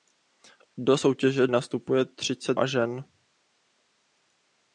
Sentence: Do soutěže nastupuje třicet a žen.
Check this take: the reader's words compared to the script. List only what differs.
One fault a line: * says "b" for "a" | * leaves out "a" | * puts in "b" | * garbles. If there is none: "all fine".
all fine